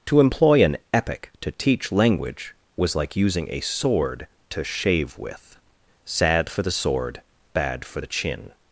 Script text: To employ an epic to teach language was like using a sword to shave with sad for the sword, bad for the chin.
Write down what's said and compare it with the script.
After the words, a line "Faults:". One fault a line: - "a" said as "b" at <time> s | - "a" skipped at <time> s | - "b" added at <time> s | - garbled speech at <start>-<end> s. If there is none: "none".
To employ an epic to teach language was like using a sword to shave with sad for the sword, bad for the chin.
Faults:
none